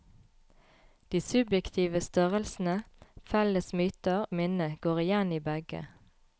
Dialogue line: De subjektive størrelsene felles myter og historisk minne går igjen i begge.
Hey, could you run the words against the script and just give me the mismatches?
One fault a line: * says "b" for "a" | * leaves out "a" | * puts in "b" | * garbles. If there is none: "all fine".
* leaves out "og historisk"